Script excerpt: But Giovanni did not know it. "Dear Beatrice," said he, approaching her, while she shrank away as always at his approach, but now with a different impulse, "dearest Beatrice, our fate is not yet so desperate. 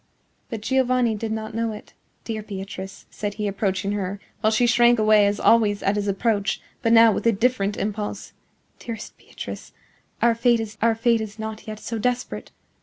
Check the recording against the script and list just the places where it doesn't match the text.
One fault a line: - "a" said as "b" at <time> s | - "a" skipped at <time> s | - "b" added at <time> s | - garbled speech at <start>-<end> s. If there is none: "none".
- "our fate is" added at 10.8 s